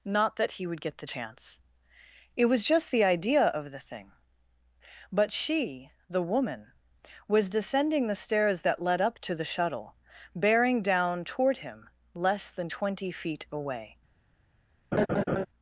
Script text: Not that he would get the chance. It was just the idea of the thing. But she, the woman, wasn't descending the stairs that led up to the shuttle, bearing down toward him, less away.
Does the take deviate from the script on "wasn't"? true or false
true